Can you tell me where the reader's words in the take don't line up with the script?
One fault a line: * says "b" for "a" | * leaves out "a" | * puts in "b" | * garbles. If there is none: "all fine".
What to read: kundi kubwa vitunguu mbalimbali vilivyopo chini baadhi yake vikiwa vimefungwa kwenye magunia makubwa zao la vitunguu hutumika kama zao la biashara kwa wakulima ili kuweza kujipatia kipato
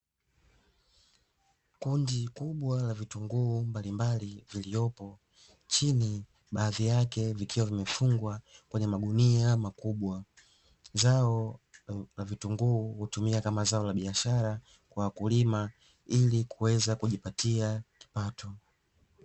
* puts in "la"